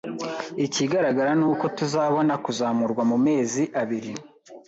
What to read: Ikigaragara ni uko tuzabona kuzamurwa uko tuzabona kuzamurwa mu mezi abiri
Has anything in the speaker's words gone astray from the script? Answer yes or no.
yes